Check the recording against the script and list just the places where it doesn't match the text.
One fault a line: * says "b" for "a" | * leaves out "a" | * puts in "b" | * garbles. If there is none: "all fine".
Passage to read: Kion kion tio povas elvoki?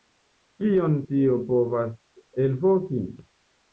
* leaves out "kion"